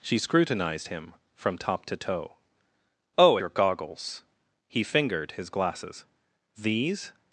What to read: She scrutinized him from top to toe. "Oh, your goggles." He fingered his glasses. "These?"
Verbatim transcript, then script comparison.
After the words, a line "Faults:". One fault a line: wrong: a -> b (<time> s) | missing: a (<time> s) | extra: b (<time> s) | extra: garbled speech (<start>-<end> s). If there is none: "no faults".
She scrutinized him from top to toe. "Oh, your goggles." He fingered his glasses. "These?"
Faults:
no faults